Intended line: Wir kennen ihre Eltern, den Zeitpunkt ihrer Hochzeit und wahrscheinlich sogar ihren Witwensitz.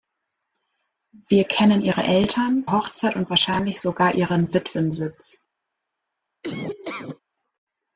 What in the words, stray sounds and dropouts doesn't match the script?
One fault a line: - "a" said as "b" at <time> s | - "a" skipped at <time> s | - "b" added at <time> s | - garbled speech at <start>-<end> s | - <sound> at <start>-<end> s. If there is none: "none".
- "den Zeitpunkt ihrer" skipped at 2.7 s
- laugh at 6.4-7.2 s